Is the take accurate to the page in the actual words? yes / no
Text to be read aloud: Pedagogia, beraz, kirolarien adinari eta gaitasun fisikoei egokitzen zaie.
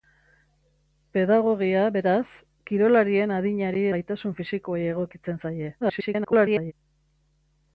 no